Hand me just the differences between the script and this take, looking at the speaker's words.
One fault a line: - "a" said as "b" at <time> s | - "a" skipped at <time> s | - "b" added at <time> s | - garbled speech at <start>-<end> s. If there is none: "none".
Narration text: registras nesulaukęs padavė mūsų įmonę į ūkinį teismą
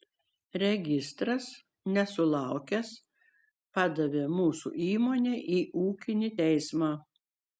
none